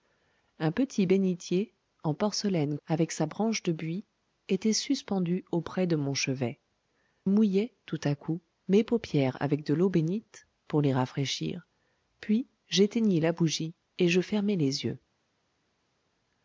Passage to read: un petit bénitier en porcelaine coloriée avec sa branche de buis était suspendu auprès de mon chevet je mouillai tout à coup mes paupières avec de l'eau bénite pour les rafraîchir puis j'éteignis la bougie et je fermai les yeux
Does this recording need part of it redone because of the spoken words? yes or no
yes